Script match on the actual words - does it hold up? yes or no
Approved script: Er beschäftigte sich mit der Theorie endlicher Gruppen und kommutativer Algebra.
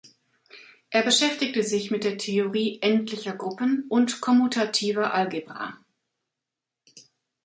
yes